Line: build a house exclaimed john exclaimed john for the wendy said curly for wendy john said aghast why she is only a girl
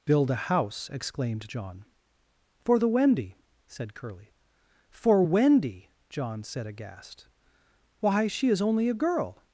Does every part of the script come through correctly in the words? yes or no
no